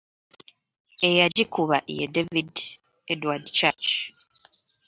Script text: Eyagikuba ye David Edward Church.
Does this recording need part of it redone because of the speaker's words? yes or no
no